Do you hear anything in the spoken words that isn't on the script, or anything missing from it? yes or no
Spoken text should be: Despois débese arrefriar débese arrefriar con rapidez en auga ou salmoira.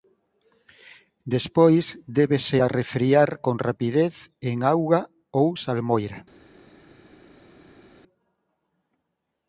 yes